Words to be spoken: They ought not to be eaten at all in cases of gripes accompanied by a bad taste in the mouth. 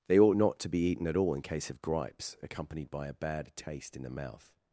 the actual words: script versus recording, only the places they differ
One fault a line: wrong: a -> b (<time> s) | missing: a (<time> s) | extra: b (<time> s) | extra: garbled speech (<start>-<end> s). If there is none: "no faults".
wrong: cases -> case (1.4 s)